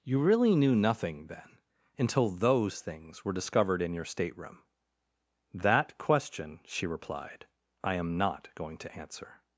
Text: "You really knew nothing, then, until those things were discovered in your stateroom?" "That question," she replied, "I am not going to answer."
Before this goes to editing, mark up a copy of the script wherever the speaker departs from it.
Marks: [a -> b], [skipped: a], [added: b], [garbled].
"You really knew nothing, then, until those things were discovered in your stateroom?" "That question," she replied, "I am not going to answer."